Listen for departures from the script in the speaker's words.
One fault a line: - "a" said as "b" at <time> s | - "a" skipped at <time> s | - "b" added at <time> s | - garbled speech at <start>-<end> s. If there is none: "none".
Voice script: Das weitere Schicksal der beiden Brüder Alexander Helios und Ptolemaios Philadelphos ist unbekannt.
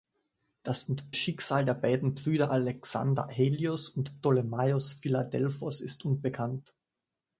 - "weitere" said as "und" at 0.8 s